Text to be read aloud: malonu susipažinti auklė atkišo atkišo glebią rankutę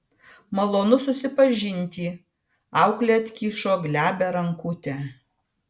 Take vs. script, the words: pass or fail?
fail